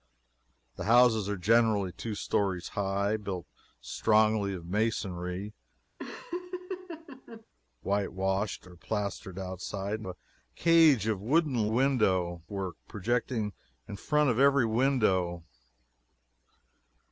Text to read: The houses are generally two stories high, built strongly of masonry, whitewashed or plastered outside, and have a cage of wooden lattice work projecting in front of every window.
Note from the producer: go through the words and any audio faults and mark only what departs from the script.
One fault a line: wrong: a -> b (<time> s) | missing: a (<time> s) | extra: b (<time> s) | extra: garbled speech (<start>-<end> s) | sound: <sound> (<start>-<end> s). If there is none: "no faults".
sound: laugh (6.0-7.5 s)
missing: have (10.1 s)
wrong: lattice -> window (11.7 s)